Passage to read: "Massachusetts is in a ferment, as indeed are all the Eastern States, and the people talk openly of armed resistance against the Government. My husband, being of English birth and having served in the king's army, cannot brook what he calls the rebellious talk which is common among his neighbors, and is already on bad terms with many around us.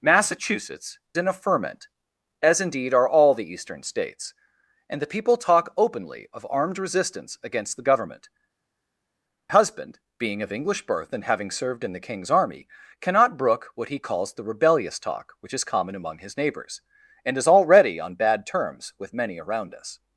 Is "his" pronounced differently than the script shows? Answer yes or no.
no